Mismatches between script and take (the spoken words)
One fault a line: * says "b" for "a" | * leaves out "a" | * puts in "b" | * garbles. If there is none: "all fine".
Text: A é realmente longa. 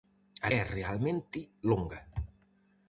all fine